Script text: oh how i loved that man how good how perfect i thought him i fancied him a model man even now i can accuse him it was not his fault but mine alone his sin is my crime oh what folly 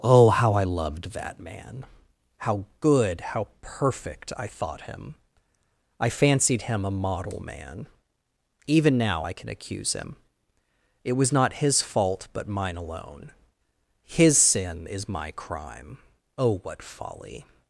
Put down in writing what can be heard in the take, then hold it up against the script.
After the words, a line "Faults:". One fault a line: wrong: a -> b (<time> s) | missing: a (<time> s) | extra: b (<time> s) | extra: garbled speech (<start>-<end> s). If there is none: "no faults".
oh how i loved that man how good how perfect i thought him i fancied him a model man even now i can accuse him it was not his fault but mine alone his sin is my crime oh what folly
Faults:
no faults